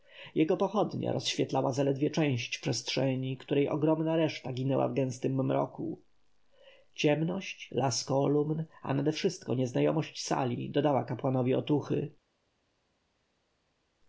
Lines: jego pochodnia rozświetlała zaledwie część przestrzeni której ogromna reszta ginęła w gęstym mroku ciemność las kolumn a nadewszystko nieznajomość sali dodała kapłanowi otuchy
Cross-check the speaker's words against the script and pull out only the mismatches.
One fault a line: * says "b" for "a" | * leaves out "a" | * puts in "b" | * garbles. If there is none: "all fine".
all fine